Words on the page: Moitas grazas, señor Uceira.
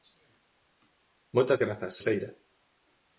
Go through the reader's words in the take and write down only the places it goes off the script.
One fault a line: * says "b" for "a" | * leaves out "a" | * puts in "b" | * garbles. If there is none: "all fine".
* leaves out "señor"